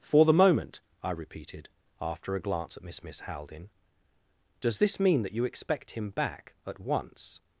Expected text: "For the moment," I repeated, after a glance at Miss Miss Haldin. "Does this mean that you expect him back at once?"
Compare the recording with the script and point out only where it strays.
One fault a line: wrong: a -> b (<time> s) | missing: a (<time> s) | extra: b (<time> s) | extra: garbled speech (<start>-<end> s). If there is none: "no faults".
no faults